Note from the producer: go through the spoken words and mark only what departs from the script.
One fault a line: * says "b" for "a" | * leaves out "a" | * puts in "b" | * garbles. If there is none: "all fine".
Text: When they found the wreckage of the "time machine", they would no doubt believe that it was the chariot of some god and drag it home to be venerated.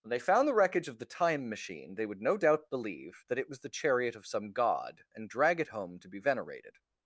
all fine